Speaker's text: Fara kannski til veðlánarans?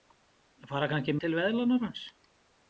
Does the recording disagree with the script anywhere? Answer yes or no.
no